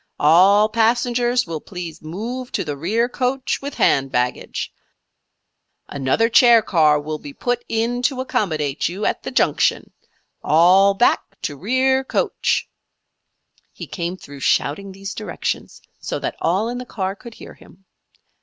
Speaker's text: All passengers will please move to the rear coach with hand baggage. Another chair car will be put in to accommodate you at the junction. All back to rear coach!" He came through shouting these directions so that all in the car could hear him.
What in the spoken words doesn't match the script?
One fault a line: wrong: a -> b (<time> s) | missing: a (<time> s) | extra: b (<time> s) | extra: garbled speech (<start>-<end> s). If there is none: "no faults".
no faults